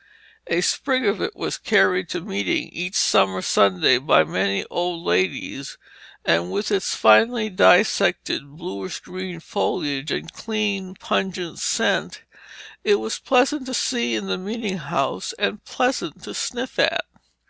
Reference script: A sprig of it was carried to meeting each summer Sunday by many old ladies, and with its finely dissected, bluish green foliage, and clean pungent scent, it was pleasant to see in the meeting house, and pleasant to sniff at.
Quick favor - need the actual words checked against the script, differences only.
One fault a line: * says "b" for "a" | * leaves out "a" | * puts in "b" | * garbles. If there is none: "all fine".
all fine